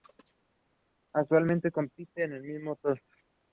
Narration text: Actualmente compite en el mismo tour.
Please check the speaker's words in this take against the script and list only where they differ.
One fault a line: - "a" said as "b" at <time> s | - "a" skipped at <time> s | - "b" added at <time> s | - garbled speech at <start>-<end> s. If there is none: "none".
none